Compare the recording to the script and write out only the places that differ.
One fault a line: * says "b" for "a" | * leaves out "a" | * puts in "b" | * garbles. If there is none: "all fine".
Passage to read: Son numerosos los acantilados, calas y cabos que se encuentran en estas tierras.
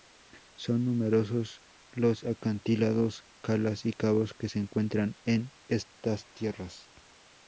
all fine